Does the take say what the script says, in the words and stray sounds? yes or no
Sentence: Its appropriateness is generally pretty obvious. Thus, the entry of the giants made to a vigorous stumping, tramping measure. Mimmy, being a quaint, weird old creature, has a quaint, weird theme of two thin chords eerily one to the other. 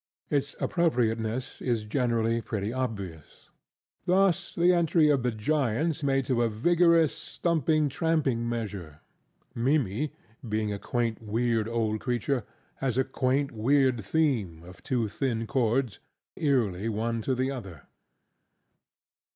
yes